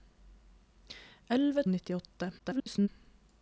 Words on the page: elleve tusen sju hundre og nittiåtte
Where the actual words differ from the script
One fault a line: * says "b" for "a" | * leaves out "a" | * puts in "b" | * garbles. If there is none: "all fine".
* leaves out "tusen sju hundre"
* garbles